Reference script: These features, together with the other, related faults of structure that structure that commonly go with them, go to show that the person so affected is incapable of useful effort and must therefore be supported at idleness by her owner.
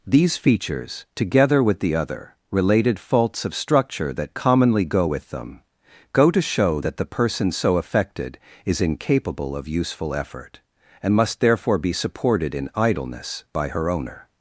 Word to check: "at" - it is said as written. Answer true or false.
false